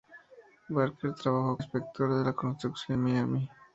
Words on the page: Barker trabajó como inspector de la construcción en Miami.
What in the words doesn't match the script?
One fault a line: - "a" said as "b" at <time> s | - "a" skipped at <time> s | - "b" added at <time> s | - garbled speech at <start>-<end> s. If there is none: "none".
- "como" skipped at 1.6 s
- "en" skipped at 3.0 s